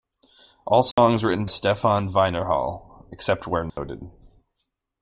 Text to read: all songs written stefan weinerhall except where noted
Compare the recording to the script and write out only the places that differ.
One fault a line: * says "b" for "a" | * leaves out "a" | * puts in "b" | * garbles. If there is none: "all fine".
all fine